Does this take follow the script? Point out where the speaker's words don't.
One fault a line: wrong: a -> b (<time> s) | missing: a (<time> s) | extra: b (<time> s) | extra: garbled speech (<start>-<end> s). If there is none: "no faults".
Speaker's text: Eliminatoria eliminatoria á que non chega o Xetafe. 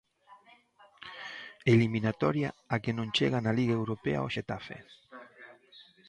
missing: eliminatoria (2.5 s)
extra: na Liga Europa (3.4 s)